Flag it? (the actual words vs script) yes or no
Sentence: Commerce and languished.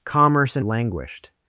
no